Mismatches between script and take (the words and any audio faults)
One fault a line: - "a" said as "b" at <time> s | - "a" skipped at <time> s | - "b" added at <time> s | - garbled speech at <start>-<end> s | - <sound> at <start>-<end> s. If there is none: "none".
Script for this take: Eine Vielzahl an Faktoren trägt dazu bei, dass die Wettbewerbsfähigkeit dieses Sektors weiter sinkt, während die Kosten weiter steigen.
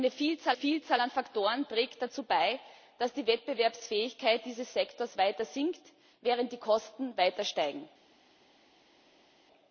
- "Vielzahl" added at 0.5 s